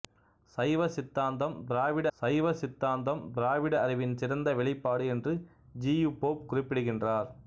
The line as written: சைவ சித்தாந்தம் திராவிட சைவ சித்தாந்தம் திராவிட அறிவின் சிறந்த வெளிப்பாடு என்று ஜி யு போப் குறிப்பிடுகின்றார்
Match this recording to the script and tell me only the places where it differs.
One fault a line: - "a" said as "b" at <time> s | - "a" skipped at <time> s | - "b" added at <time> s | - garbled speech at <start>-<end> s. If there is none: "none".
none